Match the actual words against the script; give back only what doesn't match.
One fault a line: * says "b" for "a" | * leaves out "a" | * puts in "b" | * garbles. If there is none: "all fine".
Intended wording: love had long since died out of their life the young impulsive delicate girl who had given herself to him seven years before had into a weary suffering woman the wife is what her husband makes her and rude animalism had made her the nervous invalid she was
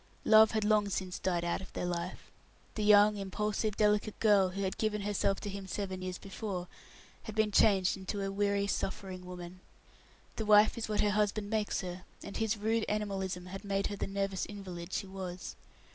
* puts in "been changed"
* puts in "his"